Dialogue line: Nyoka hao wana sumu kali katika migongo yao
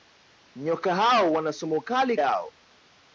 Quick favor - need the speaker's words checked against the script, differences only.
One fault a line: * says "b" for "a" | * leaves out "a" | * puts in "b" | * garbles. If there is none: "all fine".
* leaves out "katika migongo"